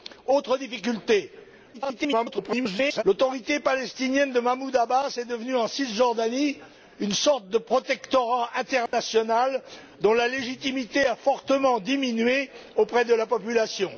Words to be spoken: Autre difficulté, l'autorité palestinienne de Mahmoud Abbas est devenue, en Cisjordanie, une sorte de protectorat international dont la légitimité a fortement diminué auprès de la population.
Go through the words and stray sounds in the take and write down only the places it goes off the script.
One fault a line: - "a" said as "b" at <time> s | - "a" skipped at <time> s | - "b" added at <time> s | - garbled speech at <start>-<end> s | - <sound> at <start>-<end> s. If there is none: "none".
- garbled speech at 1.7-3.0 s
- dropout at 8.9-8.9 s